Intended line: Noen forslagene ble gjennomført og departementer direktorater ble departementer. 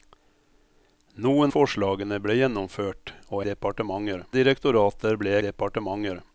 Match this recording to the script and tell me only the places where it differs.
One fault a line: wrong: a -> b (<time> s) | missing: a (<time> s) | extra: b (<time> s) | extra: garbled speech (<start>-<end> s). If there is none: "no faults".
no faults